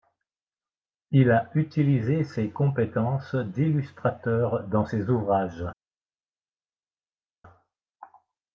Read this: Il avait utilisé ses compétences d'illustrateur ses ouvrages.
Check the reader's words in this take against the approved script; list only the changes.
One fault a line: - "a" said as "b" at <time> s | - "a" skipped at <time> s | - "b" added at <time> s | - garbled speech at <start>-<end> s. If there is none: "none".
- "avait" said as "a" at 1.3 s
- "dans" added at 4.6 s